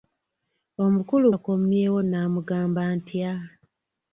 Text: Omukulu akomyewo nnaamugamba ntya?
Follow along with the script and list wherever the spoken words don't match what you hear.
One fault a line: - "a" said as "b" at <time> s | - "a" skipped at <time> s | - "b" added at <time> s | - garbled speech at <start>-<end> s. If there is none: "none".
none